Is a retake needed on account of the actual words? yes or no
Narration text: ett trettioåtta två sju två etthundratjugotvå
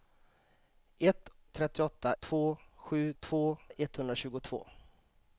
no